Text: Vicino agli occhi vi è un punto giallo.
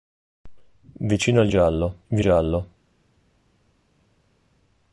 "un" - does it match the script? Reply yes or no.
no